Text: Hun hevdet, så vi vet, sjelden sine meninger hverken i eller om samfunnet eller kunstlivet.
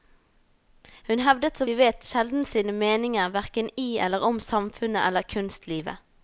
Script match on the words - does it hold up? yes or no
yes